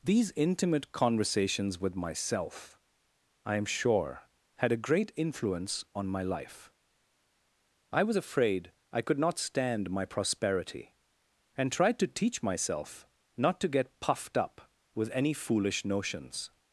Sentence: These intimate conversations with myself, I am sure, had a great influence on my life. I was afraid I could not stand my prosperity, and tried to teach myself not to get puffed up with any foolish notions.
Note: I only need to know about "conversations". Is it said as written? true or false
true